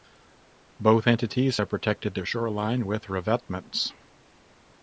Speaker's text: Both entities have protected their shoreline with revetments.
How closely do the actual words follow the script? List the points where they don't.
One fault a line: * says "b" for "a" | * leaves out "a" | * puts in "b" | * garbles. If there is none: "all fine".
all fine